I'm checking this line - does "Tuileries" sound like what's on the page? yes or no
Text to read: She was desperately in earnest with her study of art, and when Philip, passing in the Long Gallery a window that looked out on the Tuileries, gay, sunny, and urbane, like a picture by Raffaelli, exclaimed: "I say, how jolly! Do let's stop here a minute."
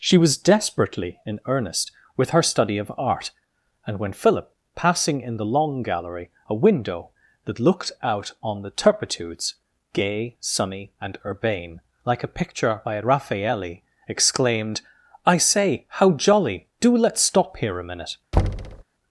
no